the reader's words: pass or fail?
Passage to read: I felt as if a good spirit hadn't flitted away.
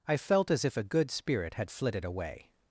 fail